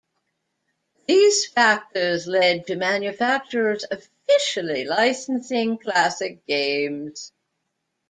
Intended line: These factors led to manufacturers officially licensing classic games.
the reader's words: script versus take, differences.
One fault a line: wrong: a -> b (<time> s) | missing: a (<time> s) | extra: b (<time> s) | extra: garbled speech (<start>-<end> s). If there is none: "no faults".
no faults